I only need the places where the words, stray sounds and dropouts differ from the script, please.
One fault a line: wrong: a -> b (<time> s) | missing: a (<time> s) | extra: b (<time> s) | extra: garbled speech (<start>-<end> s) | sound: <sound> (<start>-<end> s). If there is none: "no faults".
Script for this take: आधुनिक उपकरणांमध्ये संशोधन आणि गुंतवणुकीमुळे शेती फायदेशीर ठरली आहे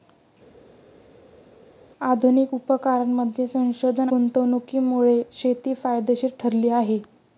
missing: आणि (4.1 s)